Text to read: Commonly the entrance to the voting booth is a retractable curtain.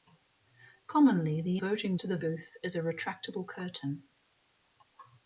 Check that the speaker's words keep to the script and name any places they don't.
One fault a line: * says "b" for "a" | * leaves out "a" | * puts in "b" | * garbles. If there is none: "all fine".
* says "voting" for "entrance"
* leaves out "voting"